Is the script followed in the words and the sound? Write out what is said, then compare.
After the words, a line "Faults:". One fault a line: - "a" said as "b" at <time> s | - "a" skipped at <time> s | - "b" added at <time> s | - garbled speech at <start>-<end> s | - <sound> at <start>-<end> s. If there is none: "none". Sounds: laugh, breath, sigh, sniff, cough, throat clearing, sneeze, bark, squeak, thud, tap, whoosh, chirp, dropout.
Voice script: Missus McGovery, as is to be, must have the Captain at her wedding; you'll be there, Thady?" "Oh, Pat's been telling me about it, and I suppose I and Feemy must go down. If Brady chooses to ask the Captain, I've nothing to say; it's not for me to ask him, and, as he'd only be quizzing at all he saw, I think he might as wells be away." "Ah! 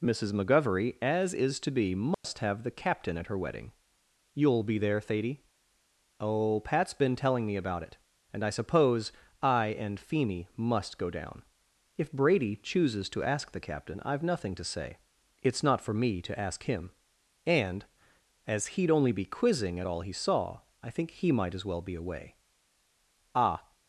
Missus McGovery, as is to be, must have the Captain at her wedding; you'll be there, Thady?" "Oh, Pat's been telling me about it, and I suppose I and Feemy must go down. If Brady chooses to ask the Captain, I've nothing to say; it's not for me to ask him, and, as he'd only be quizzing at all he saw, I think he might as well be away." "Ah!
Faults:
- dropout at 2.1-2.2 s
- "wells" said as "well" at 21.7 s